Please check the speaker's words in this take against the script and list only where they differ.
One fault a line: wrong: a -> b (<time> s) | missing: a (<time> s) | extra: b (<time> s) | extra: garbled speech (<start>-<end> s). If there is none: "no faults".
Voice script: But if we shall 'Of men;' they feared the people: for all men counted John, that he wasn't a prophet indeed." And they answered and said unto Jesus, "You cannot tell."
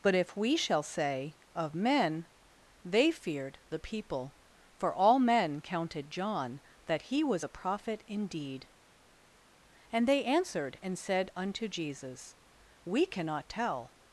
extra: say (0.8 s)
wrong: wasn't -> was (7.2 s)
wrong: You -> We (12.8 s)